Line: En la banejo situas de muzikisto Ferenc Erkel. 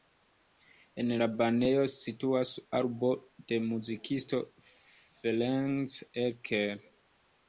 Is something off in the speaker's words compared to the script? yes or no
yes